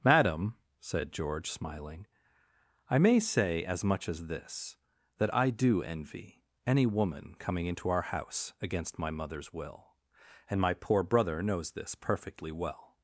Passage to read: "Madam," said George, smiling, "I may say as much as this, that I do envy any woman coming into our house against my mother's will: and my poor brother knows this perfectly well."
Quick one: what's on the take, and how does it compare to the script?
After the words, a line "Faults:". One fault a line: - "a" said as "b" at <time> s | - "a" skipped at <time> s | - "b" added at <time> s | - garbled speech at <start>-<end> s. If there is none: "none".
"Madam," said George, smiling, "I may say as much as this, that I do envy any woman coming into our house against my mother's will: and my poor brother knows this perfectly well."
Faults:
none